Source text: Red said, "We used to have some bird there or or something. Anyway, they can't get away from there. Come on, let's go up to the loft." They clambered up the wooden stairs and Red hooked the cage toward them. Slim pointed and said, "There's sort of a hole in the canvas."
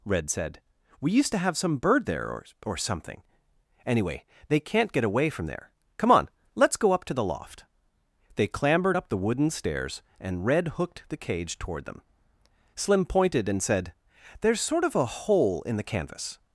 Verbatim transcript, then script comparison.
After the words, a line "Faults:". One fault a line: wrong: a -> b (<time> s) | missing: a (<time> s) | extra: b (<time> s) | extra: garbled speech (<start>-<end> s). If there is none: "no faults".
Red said, "We used to have some bird there or or something. Anyway, they can't get away from there. Come on, let's go up to the loft." They clambered up the wooden stairs and Red hooked the cage toward them. Slim pointed and said, "There's sort of a hole in the canvas."
Faults:
no faults